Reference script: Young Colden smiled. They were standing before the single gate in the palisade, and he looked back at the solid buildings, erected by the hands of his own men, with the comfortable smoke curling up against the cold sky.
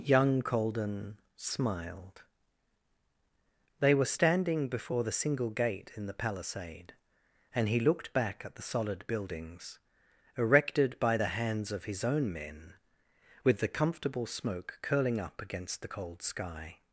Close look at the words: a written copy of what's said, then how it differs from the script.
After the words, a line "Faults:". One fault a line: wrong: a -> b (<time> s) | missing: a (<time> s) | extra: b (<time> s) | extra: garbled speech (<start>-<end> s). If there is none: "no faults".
Young Colden smiled. They were standing before the single gate in the palisade, and he looked back at the solid buildings, erected by the hands of his own men, with the comfortable smoke curling up against the cold sky.
Faults:
no faults